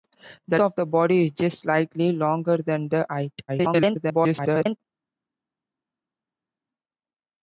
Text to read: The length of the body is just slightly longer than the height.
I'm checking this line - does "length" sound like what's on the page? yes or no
no